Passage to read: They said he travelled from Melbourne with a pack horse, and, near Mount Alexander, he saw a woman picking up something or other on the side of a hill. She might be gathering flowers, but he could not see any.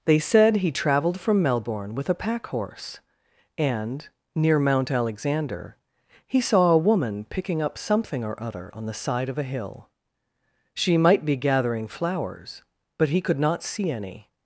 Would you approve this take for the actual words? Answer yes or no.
yes